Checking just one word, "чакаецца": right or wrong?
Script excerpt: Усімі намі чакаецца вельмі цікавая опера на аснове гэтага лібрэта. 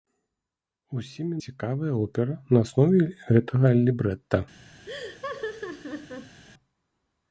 wrong